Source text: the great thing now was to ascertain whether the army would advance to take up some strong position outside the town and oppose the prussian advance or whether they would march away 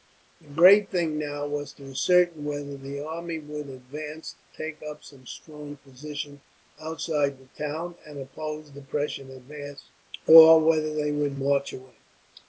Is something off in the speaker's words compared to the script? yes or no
no